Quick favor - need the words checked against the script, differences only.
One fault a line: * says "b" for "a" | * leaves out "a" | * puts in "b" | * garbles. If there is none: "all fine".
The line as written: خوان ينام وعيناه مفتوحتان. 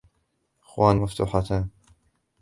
* leaves out "ينام وعيناه"